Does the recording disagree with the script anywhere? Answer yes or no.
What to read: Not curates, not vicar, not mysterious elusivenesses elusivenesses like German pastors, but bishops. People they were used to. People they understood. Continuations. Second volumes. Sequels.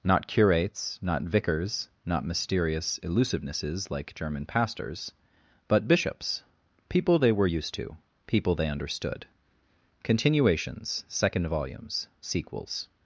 yes